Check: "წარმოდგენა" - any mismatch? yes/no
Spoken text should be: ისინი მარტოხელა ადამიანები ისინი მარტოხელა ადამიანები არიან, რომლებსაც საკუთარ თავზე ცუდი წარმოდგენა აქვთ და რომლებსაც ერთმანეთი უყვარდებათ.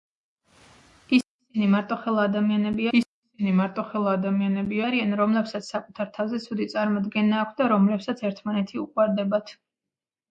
no